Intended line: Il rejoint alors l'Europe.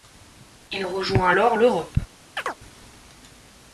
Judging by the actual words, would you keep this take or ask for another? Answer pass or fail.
pass